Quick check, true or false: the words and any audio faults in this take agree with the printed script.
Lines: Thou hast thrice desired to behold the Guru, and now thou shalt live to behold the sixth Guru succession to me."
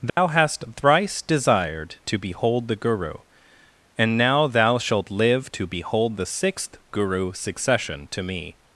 false